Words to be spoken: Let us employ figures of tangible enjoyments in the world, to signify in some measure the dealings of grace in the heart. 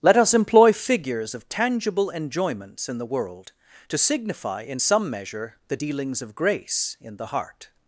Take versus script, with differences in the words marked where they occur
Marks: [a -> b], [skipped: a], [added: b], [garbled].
Let us employ figures of tangible enjoyments in the world, to signify in some measure the dealings of grace in the heart.